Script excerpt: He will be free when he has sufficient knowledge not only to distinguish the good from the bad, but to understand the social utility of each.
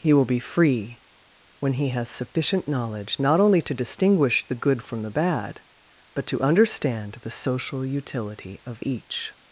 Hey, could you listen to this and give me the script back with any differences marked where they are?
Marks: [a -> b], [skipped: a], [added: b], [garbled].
He will be free when he has sufficient knowledge not only to distinguish the good from the bad, but to understand the social utility of each.